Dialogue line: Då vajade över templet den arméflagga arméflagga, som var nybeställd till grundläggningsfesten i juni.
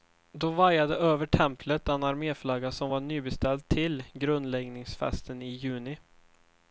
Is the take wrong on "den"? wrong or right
right